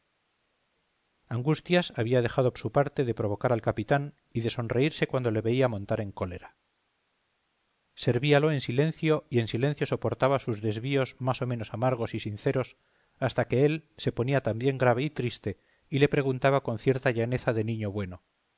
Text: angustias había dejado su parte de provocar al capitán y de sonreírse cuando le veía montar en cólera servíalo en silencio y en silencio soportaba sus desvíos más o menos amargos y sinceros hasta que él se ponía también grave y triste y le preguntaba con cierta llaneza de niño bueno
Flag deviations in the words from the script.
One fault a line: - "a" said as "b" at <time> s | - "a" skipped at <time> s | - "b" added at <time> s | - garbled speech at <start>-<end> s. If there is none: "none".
none